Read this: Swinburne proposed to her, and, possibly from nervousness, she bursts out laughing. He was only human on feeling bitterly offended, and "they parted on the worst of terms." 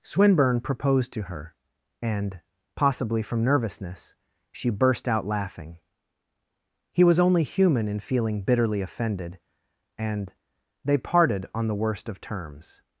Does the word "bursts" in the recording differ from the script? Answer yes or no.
yes